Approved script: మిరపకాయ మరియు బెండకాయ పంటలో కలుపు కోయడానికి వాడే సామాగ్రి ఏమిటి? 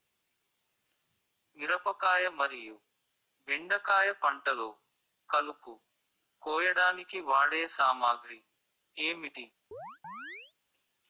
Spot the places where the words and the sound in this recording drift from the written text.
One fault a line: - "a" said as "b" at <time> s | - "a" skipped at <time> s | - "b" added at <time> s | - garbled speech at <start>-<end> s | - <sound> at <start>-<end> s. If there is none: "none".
- chirp at 9.7-10.5 s